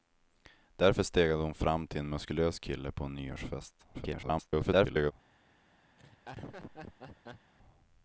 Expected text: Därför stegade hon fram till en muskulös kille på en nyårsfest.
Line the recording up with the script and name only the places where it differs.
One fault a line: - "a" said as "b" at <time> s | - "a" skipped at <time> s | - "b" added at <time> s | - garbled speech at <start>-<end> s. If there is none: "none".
- garbled speech at 3.9-5.1 s